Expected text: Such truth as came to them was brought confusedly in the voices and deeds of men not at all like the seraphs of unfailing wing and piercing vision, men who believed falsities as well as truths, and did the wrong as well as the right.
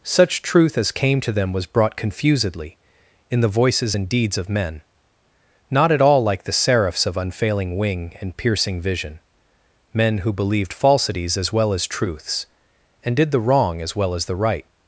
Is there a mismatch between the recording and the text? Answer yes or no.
no